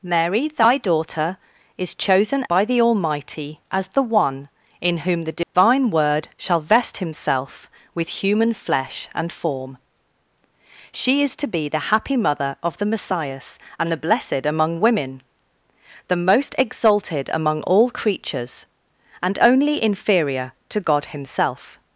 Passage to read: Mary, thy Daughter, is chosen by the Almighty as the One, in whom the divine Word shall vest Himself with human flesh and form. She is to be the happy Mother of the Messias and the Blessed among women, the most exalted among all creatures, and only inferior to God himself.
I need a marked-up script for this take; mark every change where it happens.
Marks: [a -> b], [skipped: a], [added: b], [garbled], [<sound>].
Mary, thy Daughter, is chosen by the Almighty as the One, in whom the divine [dropout] Word shall vest Himself with human flesh and form. She is to be the happy Mother of the Messias and the Blessed among women, the most exalted among all creatures, and only inferior to God himself.